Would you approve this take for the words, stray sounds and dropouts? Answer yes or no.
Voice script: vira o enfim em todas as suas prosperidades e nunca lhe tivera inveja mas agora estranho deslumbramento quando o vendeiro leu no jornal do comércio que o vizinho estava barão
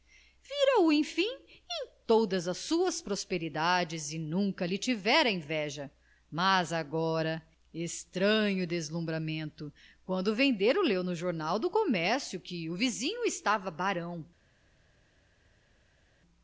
yes